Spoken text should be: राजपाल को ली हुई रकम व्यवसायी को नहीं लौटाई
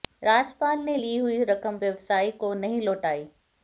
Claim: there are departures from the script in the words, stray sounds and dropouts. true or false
true